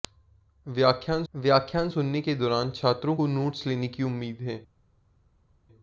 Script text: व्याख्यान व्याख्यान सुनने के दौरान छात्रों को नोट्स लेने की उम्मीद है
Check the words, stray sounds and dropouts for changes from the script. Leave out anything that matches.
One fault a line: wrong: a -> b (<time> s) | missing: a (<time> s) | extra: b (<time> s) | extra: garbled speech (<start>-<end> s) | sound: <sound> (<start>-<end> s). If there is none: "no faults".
no faults